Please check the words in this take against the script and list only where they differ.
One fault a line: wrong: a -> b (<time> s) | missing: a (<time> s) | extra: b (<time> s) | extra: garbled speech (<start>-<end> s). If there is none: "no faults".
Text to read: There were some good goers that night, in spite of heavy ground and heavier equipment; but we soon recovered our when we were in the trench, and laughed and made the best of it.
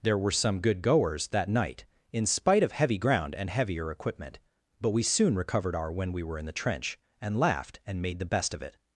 no faults